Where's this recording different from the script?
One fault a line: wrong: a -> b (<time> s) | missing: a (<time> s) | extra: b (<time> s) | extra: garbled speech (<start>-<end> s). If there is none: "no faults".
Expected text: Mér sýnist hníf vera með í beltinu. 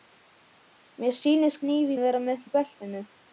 no faults